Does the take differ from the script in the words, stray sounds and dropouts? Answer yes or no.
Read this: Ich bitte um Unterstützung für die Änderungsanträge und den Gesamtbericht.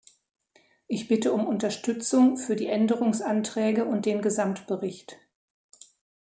no